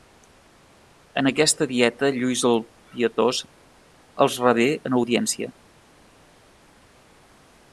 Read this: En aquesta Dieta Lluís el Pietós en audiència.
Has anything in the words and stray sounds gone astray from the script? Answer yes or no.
yes